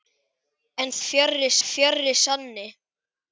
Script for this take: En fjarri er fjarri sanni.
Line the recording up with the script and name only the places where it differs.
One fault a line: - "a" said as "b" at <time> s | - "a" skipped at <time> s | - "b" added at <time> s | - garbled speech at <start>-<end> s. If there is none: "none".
none